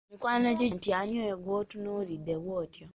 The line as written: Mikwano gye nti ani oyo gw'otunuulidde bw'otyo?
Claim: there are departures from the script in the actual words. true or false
false